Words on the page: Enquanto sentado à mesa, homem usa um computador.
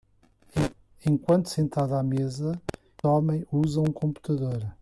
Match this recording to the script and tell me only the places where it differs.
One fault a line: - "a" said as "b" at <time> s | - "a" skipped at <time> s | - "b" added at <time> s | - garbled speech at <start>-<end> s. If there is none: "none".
none